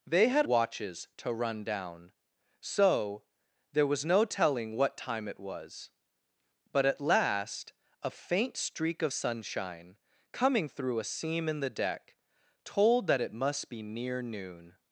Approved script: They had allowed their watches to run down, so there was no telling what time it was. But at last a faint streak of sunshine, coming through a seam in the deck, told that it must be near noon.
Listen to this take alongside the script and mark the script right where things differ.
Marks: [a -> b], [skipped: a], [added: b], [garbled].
They had [skipped: allowed their] watches to run down, so there was no telling what time it was. But at last a faint streak of sunshine, coming through a seam in the deck, told that it must be near noon.